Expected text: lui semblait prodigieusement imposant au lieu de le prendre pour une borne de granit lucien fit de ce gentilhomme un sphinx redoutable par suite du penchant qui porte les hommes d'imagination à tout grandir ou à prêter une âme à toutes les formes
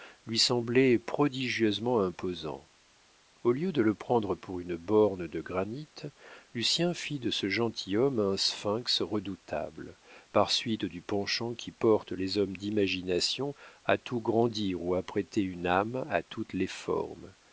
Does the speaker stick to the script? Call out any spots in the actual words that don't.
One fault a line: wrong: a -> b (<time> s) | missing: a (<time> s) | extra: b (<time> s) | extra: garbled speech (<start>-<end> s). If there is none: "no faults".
no faults